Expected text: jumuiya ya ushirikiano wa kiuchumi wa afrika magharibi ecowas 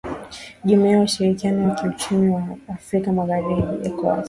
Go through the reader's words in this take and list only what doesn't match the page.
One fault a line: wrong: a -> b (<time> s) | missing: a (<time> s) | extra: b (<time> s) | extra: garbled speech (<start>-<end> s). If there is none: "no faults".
no faults